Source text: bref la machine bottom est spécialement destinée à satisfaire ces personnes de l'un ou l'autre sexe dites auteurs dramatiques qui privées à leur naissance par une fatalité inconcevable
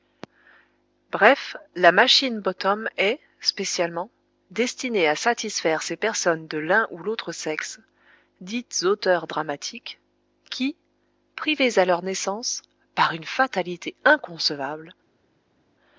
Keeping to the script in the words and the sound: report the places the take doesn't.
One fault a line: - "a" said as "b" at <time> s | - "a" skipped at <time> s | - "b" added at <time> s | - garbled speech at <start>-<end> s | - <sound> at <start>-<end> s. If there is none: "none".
none